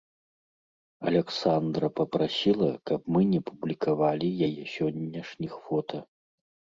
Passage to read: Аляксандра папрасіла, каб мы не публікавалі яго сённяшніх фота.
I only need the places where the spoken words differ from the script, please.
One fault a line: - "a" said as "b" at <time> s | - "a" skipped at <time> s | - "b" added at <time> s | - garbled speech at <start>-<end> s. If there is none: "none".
- "яго" said as "яе" at 4.5 s